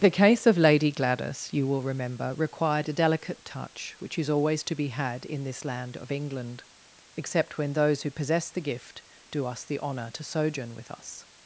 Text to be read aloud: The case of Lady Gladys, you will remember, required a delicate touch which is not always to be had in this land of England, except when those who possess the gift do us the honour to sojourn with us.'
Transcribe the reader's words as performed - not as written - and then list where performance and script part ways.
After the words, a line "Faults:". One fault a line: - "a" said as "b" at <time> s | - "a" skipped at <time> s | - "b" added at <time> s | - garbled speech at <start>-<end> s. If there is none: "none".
The case of Lady Gladys, you will remember, required a delicate touch which is always to be had in this land of England, except when those who possess the gift do us the honour to sojourn with us.'
Faults:
- "not" skipped at 4.3 s